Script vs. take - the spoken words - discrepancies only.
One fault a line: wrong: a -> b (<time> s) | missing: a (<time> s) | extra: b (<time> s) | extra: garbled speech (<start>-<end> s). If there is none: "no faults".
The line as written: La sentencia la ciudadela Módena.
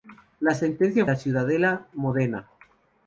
no faults